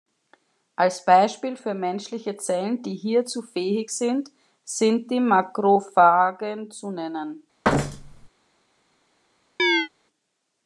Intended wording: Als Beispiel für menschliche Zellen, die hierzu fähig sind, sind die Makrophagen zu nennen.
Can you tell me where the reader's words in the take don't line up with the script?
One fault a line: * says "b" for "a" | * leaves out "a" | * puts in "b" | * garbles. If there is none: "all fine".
all fine